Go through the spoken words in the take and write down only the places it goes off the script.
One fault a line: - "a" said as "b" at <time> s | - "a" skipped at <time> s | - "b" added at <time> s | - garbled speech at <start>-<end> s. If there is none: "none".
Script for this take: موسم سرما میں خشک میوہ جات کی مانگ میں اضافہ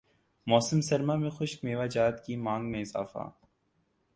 none